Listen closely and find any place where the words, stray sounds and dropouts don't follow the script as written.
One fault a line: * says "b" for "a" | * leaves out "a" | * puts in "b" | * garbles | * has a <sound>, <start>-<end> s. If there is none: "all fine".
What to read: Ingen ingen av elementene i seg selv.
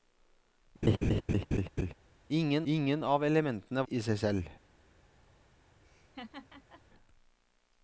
* has a laugh, 0.8-1.9 s
* has a laugh, 5.8-6.8 s